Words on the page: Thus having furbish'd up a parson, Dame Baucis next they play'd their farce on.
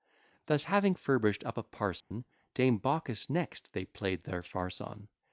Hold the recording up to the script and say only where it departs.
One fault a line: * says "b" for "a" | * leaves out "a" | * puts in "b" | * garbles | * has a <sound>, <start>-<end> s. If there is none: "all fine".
* has a dropout, 2.0-2.1 s